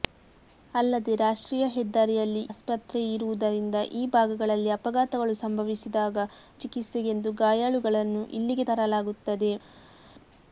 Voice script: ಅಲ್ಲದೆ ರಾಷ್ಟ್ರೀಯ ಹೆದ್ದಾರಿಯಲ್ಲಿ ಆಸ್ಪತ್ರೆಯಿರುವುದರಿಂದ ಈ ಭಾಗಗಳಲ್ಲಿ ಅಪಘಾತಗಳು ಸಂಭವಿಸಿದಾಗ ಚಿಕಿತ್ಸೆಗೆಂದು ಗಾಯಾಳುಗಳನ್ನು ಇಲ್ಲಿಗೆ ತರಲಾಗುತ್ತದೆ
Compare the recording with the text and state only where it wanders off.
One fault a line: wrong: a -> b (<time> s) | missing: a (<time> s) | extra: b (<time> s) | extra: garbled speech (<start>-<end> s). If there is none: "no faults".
no faults